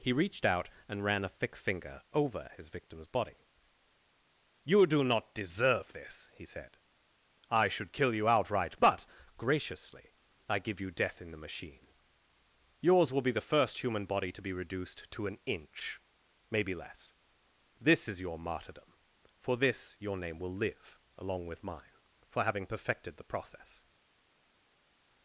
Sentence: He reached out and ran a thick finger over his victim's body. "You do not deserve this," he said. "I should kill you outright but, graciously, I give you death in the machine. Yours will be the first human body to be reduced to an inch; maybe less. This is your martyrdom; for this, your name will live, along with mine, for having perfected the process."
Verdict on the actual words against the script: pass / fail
pass